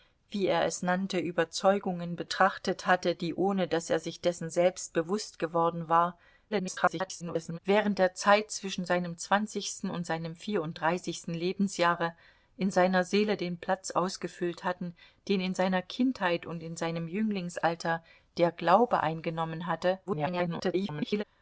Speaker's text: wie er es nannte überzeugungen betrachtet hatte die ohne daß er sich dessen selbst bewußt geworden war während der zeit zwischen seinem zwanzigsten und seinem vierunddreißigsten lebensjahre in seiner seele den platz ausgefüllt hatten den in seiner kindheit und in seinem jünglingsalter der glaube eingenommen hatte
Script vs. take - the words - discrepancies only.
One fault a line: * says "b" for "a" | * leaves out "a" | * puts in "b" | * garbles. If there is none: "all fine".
* garbles
* garbles